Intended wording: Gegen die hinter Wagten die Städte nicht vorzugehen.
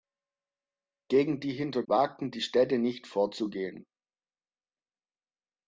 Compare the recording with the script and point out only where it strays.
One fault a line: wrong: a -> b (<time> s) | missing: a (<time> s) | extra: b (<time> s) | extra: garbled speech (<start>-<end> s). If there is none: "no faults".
no faults